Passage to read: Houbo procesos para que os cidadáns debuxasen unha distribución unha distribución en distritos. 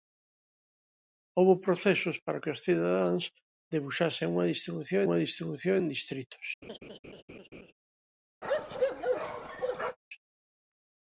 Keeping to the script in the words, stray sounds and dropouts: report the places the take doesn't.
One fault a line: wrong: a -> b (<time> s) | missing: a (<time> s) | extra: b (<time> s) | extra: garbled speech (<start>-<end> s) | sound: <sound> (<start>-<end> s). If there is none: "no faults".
sound: laugh (6.6-7.7 s)
sound: bark (8.4-10.0 s)